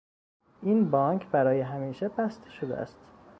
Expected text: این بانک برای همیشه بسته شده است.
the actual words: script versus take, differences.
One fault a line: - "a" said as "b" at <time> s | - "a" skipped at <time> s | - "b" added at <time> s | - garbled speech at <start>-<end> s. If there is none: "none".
none